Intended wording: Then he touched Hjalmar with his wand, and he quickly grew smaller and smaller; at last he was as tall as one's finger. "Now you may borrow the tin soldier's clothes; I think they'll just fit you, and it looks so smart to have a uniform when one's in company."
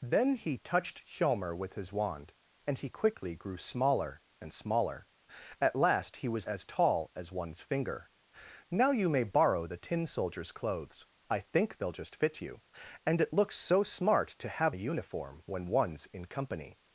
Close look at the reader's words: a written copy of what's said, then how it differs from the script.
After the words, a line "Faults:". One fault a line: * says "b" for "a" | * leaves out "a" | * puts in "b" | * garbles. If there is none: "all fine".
Then he touched Hjalmar with his wand, and he quickly grew smaller and smaller; at last he was as tall as one's finger. "Now you may borrow the tin soldier's clothes; I think they'll just fit you, and it looks so smart to have a uniform when one's in company."
Faults:
all fine